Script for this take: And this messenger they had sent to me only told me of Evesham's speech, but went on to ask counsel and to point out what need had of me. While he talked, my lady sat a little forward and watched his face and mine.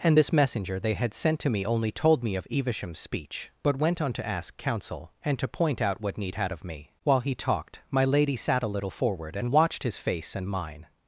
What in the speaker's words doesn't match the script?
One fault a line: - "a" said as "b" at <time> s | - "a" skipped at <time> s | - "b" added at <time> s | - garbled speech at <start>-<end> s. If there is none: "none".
none